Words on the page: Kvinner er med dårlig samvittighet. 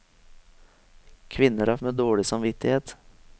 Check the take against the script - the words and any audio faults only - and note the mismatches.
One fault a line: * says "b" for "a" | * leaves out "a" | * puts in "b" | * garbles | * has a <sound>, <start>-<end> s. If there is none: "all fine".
all fine